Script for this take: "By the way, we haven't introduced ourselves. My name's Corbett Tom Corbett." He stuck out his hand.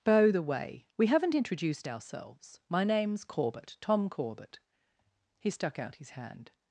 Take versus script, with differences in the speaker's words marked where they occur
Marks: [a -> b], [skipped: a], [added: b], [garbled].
"By the way, we haven't introduced ourselves. My name's Corbett Tom Corbett." He stuck out his hand.